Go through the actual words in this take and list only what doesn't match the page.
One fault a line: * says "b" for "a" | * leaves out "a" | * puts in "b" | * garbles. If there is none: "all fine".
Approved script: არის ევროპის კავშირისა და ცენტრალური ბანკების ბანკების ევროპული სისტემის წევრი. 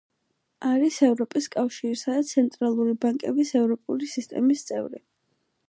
* leaves out "ბანკების"